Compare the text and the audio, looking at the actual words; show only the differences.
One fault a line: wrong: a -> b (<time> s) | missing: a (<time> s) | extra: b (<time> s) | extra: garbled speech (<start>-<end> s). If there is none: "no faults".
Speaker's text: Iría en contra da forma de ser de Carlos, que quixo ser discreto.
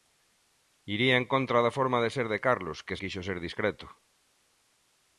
no faults